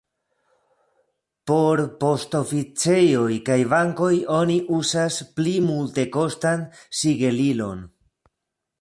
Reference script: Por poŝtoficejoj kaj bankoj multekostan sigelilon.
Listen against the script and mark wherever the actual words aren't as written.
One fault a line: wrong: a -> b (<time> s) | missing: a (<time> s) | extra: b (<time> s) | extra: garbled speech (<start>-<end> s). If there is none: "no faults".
extra: oni uzas pli (4.4 s)